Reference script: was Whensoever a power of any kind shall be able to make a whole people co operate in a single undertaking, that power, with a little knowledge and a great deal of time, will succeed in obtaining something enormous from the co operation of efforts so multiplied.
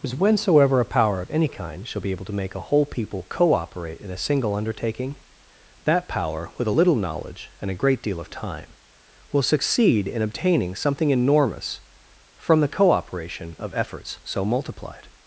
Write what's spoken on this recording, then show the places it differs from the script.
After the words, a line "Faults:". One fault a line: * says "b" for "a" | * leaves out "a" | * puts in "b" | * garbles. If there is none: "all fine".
was Whensoever a power of any kind shall be able to make a whole people co operate in a single undertaking, that power, with a little knowledge and a great deal of time, will succeed in obtaining something enormous from the co operation of efforts so multiplied.
Faults:
all fine